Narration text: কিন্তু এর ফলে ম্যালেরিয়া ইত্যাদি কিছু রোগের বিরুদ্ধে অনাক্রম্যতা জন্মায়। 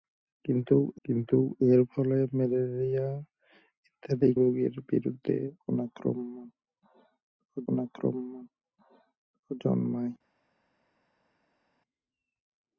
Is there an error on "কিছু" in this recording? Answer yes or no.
yes